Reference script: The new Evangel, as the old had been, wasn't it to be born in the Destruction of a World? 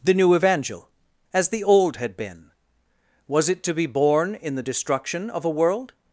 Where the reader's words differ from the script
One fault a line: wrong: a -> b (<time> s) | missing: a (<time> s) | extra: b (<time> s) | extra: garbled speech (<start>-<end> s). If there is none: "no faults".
wrong: wasn't -> was (3.3 s)